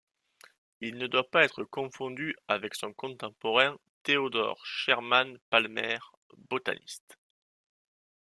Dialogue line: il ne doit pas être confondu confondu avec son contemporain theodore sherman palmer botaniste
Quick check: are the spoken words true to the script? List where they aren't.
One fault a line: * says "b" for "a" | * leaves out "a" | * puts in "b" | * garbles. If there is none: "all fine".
* leaves out "confondu"